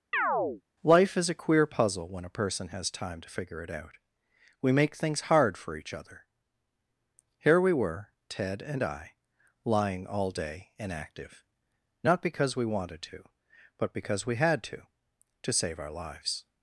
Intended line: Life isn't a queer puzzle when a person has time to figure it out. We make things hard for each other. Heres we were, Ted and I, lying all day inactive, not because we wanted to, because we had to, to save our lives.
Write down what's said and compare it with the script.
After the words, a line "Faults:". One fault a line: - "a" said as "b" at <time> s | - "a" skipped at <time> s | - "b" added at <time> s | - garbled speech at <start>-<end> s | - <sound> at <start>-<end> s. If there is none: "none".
Life is a queer puzzle when a person has time to figure it out. We make things hard for each other. Here we were, Ted and I, lying all day inactive, not because we wanted to, but because we had to, to save our lives.
Faults:
- chirp at 0.1-0.6 s
- "isn't" said as "is" at 1.2 s
- "Heres" said as "Here" at 7.4 s
- "but" added at 13.8 s